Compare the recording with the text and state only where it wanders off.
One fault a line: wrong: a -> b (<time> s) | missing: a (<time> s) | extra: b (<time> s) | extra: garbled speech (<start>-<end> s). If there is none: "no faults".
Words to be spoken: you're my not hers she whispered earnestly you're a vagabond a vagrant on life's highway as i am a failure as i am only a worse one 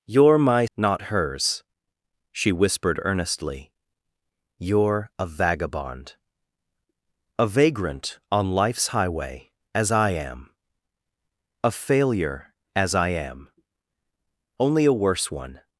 no faults